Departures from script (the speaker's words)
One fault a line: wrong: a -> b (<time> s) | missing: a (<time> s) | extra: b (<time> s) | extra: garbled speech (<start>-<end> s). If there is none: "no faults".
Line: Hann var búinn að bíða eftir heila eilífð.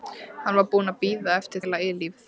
no faults